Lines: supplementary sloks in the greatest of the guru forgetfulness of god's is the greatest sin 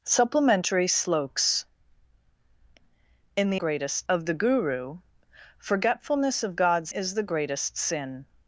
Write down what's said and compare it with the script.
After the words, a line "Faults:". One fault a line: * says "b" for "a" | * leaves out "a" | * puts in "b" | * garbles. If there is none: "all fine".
supplementary sloks in the greatest of the guru forgetfulness of god's is the greatest sin
Faults:
all fine